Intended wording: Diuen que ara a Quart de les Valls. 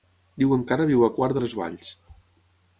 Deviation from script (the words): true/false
true